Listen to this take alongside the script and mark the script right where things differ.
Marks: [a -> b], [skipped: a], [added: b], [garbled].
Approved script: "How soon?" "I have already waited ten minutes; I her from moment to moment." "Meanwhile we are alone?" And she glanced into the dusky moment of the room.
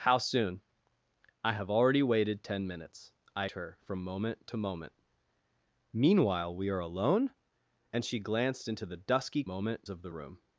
"How soon?" "I have already waited ten minutes; I her from moment to moment." "Meanwhile we are alone?" And she glanced into the dusky moment of the room.